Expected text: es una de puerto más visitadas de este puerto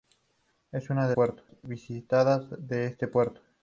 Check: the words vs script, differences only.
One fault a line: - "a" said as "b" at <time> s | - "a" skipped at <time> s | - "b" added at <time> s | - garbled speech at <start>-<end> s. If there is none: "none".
none